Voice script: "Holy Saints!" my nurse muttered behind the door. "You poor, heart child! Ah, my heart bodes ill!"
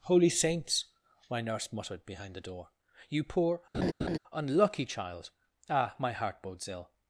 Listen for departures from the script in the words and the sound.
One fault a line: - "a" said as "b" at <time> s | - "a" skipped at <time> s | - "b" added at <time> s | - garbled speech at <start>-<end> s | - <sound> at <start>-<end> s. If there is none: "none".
- laugh at 3.7-4.2 s
- "heart" said as "unlucky" at 4.3 s